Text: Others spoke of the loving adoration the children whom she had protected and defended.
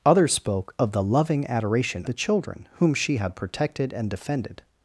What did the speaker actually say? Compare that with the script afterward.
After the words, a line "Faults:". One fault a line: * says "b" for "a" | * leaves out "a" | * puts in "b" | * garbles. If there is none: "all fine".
Others spoke of the loving adoration the children whom she had protected and defended.
Faults:
all fine